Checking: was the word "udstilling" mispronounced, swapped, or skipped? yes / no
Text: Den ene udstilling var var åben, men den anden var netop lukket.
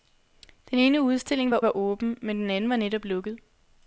no